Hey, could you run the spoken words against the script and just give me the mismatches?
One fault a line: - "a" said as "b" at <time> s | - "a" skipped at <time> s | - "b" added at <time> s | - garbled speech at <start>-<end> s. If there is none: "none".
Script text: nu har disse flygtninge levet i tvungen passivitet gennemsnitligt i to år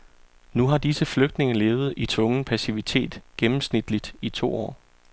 none